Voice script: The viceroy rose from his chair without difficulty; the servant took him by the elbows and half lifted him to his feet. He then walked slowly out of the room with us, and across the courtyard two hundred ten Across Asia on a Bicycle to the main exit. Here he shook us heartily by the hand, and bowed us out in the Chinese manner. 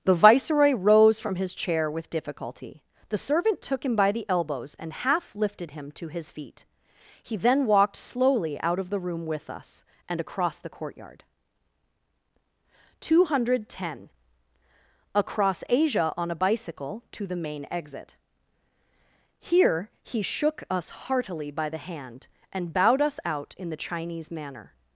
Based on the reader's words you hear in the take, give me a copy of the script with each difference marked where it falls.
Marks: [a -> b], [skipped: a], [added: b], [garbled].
The viceroy rose from his chair [without -> with] difficulty; the servant took him by the elbows and half lifted him to his feet. He then walked slowly out of the room with us, and across the courtyard two hundred ten Across Asia on a Bicycle to the main exit. Here he shook us heartily by the hand, and bowed us out in the Chinese manner.